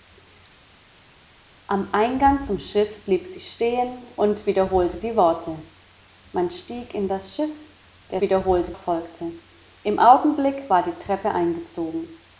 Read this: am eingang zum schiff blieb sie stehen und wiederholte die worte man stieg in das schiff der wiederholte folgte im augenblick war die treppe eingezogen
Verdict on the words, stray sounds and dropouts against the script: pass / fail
pass